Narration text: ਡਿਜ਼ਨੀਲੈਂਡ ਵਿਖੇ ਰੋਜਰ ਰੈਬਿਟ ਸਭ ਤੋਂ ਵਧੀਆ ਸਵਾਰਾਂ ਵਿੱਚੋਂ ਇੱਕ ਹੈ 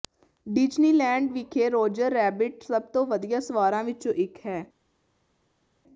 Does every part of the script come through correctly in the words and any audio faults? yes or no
yes